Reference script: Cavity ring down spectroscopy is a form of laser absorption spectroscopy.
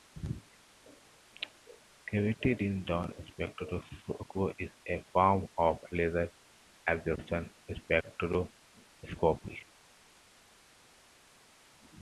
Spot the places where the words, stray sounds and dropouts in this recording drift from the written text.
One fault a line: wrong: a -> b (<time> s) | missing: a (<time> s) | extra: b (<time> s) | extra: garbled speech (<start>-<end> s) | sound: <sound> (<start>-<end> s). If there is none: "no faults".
no faults